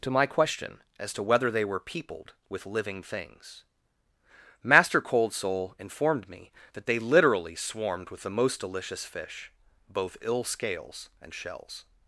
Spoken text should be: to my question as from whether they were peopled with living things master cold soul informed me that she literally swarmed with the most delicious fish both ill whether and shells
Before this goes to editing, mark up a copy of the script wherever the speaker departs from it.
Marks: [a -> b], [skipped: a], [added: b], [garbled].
to my question as [from -> to] whether they were peopled with living things master cold soul informed me that [she -> they] literally swarmed with the most delicious fish both ill [whether -> scales] and shells